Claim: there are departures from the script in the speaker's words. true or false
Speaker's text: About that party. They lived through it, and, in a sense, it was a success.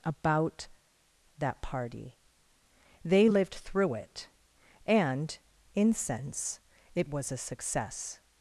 true